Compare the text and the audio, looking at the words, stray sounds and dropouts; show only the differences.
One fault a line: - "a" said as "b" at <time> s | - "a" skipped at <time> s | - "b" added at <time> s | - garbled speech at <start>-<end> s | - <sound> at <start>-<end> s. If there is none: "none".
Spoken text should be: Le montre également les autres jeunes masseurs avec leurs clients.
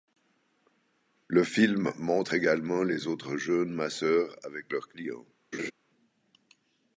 - "film" added at 1.4 s
- laugh at 5.5-5.7 s